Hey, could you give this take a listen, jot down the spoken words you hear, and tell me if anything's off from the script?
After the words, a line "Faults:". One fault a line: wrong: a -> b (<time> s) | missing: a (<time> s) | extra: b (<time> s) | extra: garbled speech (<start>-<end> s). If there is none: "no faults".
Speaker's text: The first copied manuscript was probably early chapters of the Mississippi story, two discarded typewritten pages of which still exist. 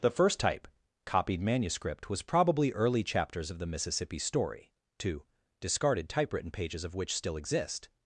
The first type copied manuscript was probably early chapters of the Mississippi story, two discarded typewritten pages of which still exist.
Faults:
extra: type (0.4 s)